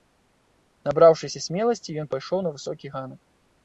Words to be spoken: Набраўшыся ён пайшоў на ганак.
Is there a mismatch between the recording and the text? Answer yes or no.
yes